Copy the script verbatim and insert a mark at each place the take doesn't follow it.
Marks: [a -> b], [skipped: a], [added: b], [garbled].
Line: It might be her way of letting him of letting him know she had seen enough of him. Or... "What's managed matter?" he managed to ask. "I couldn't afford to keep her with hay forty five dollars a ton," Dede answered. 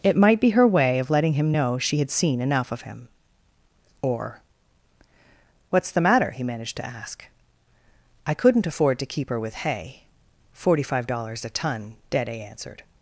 It might be her way of letting him [skipped: of letting him] know she had seen enough of him. Or... "What's [managed -> the] matter?" he managed to ask. "I couldn't afford to keep her with hay forty five dollars a ton," Dede answered.